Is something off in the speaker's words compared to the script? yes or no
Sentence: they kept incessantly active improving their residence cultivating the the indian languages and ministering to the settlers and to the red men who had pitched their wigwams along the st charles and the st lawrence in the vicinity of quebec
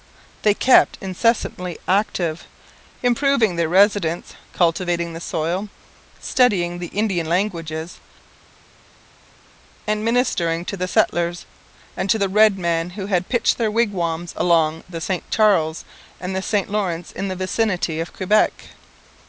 yes